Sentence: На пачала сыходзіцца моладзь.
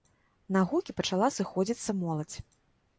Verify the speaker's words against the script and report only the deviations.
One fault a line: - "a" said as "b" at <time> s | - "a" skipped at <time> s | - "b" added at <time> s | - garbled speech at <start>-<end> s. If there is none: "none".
- "гукі" added at 0.7 s